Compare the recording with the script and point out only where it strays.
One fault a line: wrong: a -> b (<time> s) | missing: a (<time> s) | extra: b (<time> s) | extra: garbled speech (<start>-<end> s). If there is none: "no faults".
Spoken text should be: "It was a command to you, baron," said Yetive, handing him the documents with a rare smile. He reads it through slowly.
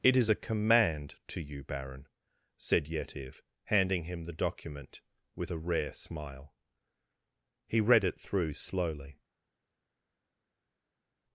wrong: was -> is (0.2 s)
wrong: documents -> document (4.3 s)
wrong: reads -> read (7.8 s)